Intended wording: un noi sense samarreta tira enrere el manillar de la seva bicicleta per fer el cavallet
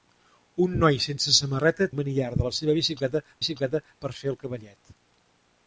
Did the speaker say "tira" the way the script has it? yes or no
no